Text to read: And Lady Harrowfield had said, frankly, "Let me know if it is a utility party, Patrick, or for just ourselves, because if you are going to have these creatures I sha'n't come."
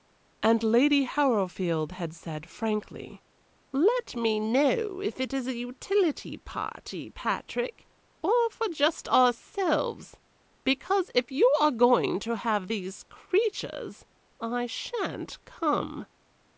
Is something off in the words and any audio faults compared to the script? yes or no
no